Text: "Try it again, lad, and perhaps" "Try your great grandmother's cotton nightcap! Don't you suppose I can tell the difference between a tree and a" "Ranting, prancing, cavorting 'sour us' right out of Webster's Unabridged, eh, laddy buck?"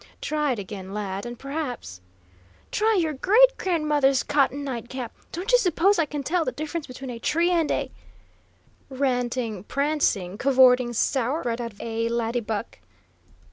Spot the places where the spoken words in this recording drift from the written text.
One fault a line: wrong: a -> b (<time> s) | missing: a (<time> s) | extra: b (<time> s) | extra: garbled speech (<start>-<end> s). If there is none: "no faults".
missing: us (11.4 s)
missing: Webster's Unabridged (11.8 s)